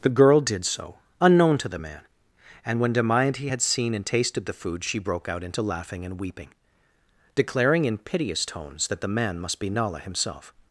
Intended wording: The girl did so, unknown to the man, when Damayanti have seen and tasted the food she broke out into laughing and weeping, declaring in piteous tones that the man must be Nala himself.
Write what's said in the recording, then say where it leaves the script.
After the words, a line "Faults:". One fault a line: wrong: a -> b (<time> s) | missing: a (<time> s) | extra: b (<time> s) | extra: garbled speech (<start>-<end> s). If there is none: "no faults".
The girl did so, unknown to the man, and when Damayanti had seen and tasted the food she broke out into laughing and weeping, declaring in piteous tones that the man must be Nala himself.
Faults:
extra: and (2.6 s)
wrong: have -> had (3.5 s)